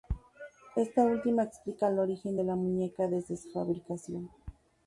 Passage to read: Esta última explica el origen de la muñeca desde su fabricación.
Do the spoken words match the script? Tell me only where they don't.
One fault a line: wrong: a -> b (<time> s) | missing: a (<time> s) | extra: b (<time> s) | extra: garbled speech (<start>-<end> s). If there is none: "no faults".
no faults